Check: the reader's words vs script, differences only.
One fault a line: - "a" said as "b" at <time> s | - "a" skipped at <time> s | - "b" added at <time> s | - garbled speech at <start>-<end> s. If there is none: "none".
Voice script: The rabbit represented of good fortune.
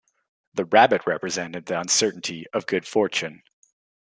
- "the uncertainty" added at 1.7 s